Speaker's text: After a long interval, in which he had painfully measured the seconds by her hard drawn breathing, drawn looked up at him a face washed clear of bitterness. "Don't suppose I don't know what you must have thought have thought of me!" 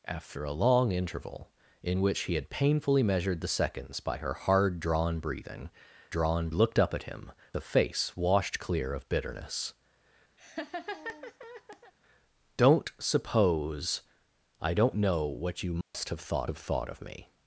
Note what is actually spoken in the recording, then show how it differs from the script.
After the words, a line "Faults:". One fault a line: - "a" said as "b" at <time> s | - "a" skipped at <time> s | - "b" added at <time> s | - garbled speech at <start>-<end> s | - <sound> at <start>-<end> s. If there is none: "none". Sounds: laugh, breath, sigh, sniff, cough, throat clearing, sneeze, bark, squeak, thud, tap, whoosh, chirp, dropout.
After a long interval, in which he had painfully measured the seconds by her hard drawn breathing, drawn looked up at him a face washed clear of bitterness. "Don't suppose I don't know what you must have thought have thought of me!"
Faults:
- laugh at 10.4-11.9 s
- dropout at 15.8-15.9 s